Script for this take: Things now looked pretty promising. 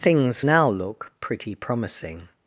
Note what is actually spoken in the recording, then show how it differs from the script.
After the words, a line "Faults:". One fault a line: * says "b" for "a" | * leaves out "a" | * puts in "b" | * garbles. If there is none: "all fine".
Things now look pretty promising.
Faults:
* says "look" for "looked"